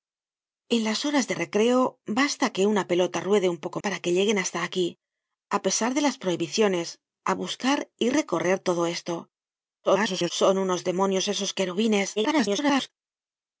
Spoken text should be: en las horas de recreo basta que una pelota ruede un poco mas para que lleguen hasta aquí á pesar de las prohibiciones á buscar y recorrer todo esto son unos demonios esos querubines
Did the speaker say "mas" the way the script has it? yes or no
no